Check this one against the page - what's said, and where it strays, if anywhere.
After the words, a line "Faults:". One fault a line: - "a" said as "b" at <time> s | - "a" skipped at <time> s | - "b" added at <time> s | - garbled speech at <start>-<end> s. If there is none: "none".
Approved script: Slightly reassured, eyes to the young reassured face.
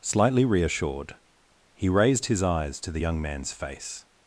Slightly reassured, he raised his eyes to the young man's face.
Faults:
- "he raised his" added at 1.8 s
- "reassured" said as "man's" at 3.2 s